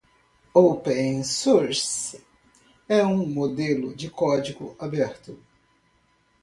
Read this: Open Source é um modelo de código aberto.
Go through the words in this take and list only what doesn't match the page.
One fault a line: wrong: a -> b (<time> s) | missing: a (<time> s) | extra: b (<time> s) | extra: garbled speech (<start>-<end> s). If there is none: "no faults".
no faults